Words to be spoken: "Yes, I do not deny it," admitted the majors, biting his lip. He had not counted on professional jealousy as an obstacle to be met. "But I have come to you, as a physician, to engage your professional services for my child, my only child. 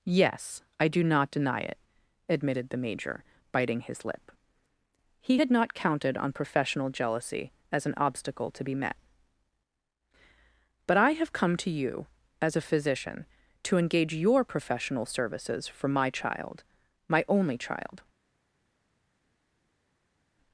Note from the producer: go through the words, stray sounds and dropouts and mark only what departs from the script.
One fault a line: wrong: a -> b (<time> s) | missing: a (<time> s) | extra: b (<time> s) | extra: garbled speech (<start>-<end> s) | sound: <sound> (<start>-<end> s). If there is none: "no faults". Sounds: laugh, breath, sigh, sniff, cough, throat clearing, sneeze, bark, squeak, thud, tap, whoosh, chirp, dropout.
wrong: majors -> major (2.8 s)